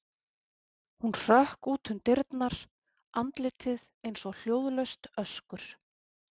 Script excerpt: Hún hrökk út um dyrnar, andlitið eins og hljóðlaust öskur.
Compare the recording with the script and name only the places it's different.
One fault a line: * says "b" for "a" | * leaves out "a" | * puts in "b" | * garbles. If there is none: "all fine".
all fine